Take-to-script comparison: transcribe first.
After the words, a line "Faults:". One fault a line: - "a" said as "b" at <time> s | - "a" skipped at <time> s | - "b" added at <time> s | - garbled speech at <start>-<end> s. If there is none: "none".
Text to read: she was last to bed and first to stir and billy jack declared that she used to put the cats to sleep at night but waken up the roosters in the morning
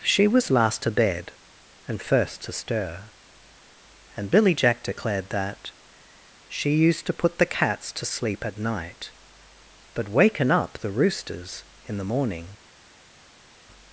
she was last to bed and first to stir and billy jack declared that she used to put the cats to sleep at night but waken up the roosters in the morning
Faults:
none